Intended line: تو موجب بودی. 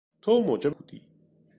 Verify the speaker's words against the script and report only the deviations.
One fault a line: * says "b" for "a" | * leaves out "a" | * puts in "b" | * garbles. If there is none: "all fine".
all fine